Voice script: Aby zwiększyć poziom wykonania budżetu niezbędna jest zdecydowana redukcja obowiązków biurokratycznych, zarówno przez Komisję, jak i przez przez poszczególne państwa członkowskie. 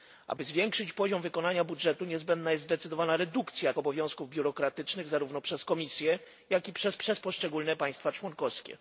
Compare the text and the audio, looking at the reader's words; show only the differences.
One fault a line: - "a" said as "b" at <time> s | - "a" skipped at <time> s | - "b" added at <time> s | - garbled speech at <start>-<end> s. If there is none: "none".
none